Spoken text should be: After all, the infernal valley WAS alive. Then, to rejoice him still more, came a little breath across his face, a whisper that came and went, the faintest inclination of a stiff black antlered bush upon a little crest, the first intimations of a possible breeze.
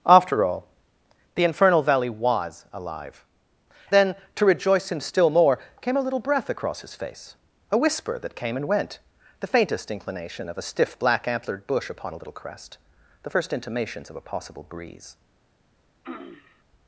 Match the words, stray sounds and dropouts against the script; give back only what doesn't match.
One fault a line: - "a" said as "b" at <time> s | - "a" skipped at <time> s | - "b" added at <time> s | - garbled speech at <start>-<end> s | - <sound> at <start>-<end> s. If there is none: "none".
- throat clearing at 16.0-16.6 s